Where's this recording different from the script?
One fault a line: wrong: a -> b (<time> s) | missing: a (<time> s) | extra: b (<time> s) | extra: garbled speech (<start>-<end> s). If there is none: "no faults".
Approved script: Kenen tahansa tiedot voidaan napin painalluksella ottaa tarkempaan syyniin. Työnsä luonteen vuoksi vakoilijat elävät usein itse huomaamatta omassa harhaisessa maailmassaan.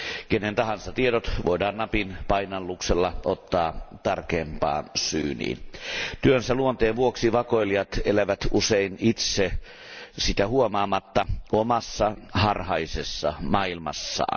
extra: sitä (10.2 s)